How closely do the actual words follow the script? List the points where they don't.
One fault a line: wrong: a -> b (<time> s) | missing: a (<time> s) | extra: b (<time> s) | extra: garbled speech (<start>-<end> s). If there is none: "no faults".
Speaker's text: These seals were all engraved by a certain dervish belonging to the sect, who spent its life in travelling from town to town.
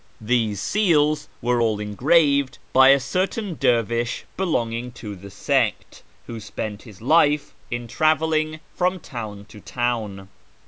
wrong: its -> his (6.8 s)